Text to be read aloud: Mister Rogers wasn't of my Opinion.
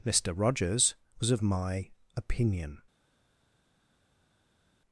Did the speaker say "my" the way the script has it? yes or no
yes